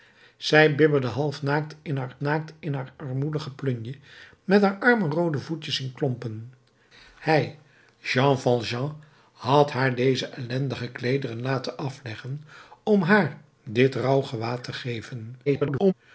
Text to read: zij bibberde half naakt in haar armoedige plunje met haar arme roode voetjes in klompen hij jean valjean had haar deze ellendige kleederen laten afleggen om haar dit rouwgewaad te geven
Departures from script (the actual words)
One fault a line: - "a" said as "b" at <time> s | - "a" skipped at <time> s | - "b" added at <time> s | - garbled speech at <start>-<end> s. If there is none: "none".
- "naakt in haar" added at 2.2 s
- garbled speech at 15.5-15.9 s